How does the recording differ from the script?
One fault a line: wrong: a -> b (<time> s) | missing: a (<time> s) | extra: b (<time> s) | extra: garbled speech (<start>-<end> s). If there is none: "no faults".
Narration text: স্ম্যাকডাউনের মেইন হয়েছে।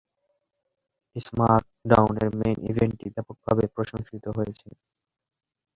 extra: ইভেন্টটি ব্যাপকভাবে প্রশংসিত (2.7 s)